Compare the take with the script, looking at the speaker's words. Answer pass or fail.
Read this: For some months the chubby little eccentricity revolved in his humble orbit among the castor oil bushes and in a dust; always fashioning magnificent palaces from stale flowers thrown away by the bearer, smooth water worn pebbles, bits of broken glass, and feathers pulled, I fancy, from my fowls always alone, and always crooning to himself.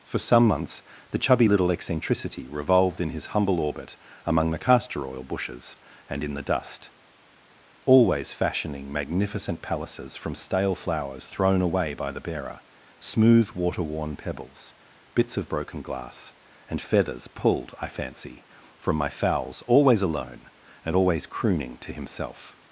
fail